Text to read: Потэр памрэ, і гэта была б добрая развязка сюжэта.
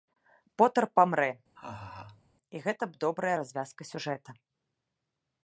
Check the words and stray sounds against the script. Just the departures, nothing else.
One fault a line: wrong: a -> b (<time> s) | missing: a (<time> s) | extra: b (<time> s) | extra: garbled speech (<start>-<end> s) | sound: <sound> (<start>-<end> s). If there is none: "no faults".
sound: laugh (1.6-2.2 s)
missing: была (2.8 s)